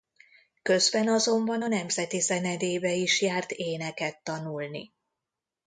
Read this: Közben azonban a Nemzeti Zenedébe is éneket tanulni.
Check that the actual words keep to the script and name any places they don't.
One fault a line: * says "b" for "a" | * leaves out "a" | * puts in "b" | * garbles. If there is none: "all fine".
* puts in "járt"